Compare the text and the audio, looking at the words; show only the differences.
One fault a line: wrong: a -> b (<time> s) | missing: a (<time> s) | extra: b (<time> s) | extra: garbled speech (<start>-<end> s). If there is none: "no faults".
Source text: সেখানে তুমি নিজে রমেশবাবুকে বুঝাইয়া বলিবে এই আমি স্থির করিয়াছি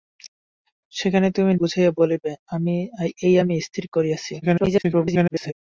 missing: নিজে রমেশবাবুকে (1.5 s)
extra: garbled speech (4.4-5.5 s)